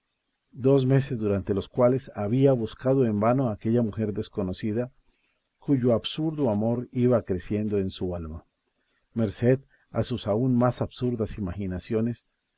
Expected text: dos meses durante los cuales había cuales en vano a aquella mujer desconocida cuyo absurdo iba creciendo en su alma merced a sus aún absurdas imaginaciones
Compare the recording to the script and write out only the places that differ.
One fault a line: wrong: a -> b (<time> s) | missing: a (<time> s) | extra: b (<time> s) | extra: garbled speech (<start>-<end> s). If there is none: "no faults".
wrong: cuales -> buscado (2.5 s)
extra: amor (6.5 s)
extra: más (10.5 s)